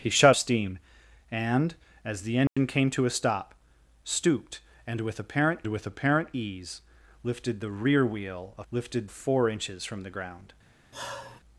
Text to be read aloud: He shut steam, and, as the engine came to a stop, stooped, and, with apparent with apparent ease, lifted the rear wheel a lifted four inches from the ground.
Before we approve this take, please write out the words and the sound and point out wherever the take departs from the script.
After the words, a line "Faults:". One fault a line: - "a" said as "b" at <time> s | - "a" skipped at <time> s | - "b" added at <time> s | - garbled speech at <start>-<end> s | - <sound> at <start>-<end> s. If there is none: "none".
He shut steam, and, as the engine came to a stop, stooped, and, with apparent with apparent ease, lifted the rear wheel a lifted four inches from the ground.
Faults:
- dropout at 2.5-2.6 s
- sigh at 10.9-11.4 s